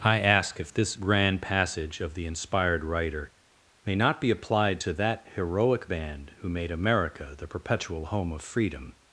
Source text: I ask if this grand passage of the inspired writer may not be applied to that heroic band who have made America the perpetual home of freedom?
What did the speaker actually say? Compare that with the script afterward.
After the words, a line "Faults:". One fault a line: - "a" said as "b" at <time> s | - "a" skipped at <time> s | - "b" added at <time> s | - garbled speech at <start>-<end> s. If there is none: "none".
I ask if this grand passage of the inspired writer may not be applied to that heroic band who made America the perpetual home of freedom?
Faults:
- "have" skipped at 6.5 s